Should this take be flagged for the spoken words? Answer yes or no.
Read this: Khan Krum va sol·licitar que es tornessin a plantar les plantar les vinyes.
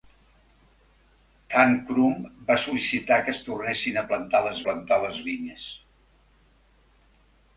no